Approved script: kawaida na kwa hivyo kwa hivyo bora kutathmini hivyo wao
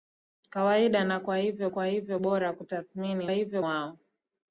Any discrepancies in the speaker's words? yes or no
no